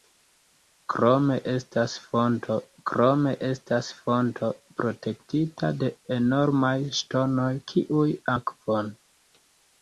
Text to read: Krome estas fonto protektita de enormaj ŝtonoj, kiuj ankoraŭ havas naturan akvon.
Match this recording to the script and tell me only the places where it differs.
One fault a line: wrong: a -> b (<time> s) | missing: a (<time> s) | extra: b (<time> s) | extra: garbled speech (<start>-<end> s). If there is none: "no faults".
extra: krome estas fonto (2.9 s)
missing: ankoraŭ havas naturan (8.1 s)